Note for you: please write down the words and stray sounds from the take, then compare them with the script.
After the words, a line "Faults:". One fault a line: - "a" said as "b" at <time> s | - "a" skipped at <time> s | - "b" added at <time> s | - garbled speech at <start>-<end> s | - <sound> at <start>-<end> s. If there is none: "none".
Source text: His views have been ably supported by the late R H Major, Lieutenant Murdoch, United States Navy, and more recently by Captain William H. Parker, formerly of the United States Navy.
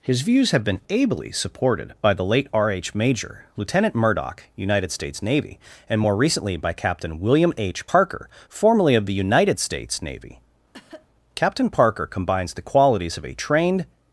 His views have been ably supported by the late R H Major, Lieutenant Murdoch, United States Navy, and more recently by Captain William H. Parker, formerly of the United States Navy. Captain Parker combines the qualities of a trained
Faults:
- cough at 10.7-11.1 s
- "Captain Parker combines the qualities of a trained" added at 11.4 s